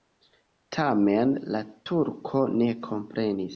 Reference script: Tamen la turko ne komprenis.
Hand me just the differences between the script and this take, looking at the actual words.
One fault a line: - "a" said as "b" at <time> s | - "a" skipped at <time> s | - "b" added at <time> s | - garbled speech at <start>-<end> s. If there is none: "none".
none